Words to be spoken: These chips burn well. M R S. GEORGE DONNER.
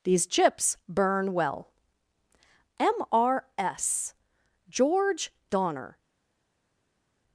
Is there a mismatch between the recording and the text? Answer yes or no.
no